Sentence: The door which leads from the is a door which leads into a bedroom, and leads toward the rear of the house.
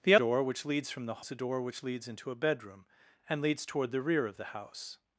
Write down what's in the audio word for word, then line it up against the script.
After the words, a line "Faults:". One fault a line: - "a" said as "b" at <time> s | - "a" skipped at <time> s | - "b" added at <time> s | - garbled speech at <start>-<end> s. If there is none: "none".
The door which leads from the is a door which leads into a bedroom, and leads toward the rear of the house.
Faults:
none